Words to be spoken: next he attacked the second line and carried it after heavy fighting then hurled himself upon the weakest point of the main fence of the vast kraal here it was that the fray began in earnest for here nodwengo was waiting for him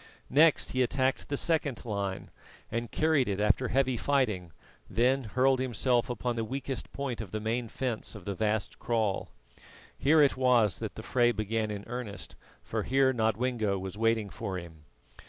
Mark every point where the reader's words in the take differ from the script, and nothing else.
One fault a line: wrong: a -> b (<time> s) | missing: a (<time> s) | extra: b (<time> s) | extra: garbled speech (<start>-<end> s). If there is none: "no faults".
no faults